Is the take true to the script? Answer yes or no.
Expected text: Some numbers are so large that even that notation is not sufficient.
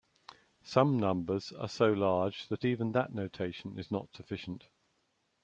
yes